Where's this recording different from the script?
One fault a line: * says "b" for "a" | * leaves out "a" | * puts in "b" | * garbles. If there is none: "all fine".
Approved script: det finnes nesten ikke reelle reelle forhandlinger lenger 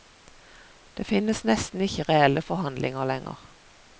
* leaves out "reelle"